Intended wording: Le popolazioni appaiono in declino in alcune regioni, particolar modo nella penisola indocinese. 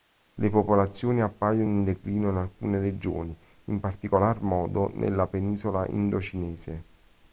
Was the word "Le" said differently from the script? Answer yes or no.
no